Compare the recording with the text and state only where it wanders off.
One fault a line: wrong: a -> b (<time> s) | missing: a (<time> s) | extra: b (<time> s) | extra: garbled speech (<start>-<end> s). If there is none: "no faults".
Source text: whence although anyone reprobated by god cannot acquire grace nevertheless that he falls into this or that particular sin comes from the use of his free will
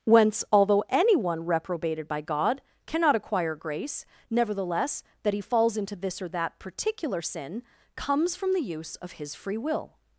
no faults